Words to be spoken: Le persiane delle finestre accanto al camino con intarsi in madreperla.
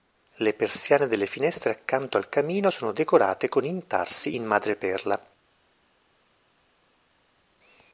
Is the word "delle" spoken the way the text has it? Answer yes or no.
yes